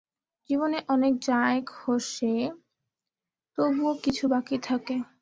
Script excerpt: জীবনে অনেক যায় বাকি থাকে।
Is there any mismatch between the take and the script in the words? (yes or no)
yes